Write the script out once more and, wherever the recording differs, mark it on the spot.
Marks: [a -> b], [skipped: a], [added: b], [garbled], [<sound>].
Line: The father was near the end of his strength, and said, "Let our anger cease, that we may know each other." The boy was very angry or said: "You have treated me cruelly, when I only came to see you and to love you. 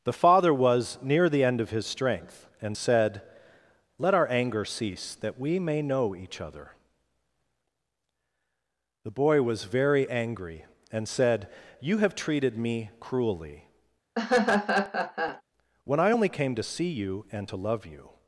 The father was near the end of his strength, and said, "Let our anger cease, that we may know each other." The boy was very angry [or -> and] said: "You have treated me cruelly, [laugh] when I only came to see you and to love you.